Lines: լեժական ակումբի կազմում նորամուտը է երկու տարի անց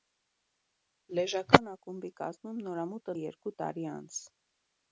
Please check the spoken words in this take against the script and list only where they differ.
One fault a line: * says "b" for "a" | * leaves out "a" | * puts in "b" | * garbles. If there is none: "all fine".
all fine